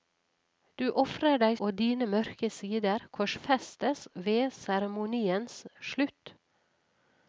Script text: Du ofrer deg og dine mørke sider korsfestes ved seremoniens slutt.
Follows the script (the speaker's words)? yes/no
yes